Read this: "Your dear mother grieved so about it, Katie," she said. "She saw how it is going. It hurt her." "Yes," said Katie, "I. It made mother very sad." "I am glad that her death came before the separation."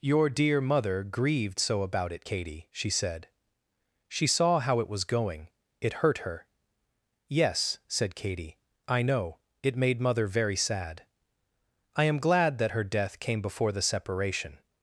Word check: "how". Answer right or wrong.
right